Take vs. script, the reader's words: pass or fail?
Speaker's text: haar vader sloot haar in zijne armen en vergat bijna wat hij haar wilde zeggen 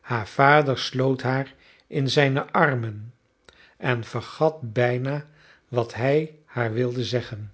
pass